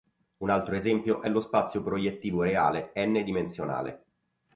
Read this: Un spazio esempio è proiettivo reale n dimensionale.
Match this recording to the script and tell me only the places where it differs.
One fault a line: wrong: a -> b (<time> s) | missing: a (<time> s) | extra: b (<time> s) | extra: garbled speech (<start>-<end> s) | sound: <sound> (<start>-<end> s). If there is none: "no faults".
wrong: spazio -> altro (0.5 s)
extra: lo spazio (1.3 s)